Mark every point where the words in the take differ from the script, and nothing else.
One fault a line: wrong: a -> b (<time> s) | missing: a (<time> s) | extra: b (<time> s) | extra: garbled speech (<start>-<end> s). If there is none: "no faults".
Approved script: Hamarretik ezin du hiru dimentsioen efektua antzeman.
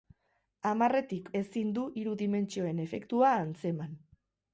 no faults